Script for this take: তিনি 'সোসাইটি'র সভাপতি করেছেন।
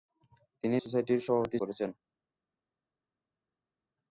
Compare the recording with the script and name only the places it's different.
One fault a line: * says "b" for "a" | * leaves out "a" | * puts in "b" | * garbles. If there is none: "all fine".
all fine